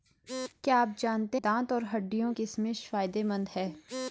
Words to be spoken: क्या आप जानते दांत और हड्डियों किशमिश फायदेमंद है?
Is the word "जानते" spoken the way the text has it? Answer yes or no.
yes